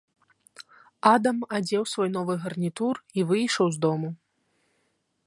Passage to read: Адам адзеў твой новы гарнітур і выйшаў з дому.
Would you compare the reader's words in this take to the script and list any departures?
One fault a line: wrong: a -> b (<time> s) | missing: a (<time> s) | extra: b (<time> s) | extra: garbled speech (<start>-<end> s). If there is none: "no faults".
wrong: твой -> свой (1.9 s)